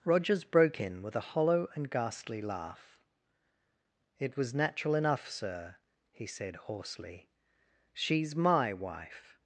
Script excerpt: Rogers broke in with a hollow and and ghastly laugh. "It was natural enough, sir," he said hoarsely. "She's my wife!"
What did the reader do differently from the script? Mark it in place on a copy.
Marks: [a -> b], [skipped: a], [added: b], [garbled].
Rogers broke in with a hollow and [skipped: and] ghastly laugh. "It was natural enough, sir," he said hoarsely. "She's my wife!"